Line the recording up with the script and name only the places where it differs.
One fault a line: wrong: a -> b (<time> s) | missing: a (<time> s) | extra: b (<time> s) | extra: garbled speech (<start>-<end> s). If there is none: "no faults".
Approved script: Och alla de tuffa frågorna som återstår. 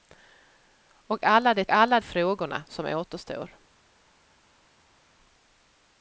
wrong: tuffa -> alla (1.7 s)